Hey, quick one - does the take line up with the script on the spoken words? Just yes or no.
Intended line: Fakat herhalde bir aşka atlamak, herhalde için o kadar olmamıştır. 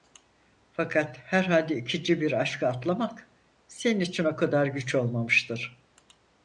no